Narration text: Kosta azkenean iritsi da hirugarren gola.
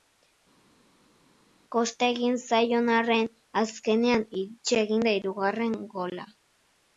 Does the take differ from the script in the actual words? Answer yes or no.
yes